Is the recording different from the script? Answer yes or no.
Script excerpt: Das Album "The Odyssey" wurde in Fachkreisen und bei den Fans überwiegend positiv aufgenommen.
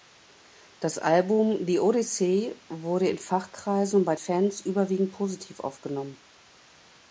yes